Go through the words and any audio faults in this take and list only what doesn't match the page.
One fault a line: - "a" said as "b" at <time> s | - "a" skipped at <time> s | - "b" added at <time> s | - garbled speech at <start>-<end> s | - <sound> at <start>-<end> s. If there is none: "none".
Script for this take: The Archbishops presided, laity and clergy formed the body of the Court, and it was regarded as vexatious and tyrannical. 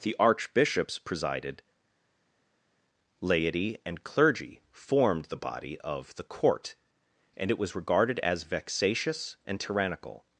none